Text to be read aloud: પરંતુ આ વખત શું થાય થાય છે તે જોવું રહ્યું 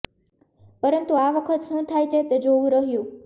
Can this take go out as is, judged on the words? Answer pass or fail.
fail